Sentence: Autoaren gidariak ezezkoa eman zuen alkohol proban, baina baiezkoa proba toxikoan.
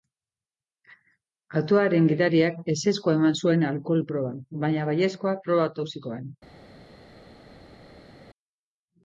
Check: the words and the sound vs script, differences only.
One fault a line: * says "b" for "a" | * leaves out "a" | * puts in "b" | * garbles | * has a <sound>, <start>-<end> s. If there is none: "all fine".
all fine